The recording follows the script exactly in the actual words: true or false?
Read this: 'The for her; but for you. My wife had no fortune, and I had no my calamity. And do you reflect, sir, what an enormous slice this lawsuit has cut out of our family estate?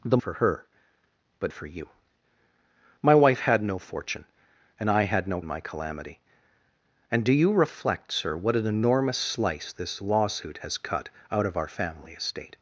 true